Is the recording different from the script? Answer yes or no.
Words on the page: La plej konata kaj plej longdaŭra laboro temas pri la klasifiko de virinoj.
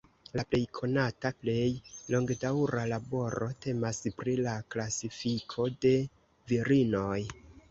yes